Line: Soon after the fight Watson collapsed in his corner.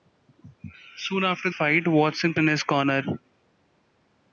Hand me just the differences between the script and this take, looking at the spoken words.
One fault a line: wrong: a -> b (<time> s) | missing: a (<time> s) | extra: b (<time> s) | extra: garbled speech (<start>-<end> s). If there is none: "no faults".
missing: the (1.5 s)
missing: collapsed (2.3 s)